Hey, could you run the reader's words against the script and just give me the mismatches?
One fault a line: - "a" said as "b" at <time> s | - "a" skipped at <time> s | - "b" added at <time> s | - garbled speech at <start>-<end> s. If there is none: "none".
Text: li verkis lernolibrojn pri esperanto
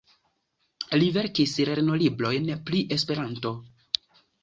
none